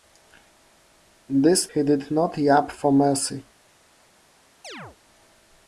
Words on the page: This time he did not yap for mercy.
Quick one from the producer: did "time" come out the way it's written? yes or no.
no